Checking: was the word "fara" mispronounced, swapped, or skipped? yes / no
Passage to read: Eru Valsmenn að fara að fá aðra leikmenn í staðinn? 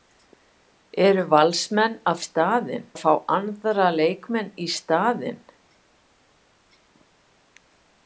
yes